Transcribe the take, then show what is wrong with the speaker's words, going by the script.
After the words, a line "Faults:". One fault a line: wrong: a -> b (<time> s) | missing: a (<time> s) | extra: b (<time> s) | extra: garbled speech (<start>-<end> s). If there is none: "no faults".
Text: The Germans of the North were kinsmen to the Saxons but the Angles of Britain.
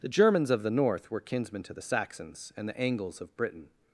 The Germans of the North were kinsmen to the Saxons and the Angles of Britain.
Faults:
wrong: but -> and (2.6 s)